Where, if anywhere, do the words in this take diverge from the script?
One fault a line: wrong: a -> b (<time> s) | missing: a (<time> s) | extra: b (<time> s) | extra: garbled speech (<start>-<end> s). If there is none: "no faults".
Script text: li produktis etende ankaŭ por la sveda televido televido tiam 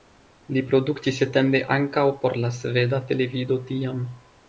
missing: televido (3.6 s)